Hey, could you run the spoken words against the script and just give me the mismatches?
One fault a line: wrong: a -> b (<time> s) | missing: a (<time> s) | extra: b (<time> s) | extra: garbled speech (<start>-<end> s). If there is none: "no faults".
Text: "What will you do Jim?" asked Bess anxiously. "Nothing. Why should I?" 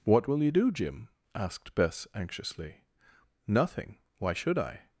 no faults